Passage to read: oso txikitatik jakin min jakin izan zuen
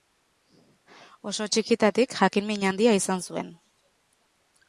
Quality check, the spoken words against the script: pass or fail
fail